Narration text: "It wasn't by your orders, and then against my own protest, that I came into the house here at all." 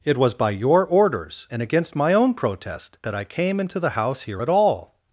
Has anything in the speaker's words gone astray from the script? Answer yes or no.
yes